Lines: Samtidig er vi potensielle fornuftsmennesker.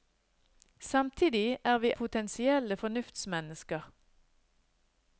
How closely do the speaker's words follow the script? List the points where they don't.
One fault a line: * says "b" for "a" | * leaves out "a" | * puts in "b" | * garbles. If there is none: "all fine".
all fine